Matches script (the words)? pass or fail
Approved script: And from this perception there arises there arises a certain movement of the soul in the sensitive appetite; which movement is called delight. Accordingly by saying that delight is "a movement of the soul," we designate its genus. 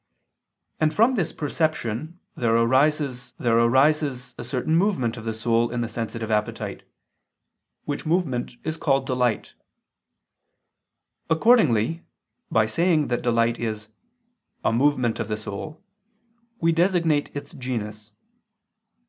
pass